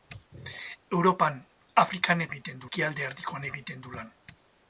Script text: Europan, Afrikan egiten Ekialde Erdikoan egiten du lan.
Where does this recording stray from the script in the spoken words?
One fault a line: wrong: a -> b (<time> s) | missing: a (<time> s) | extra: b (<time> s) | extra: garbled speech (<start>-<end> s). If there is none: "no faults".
no faults